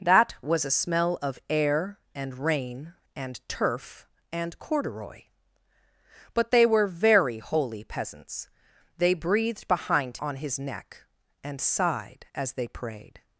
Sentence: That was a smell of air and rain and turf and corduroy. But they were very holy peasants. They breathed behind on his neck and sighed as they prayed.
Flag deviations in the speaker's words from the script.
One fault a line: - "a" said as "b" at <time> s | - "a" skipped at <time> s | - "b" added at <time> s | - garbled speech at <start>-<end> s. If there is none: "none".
none